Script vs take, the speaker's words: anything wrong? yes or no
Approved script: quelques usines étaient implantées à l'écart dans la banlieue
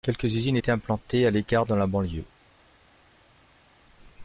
no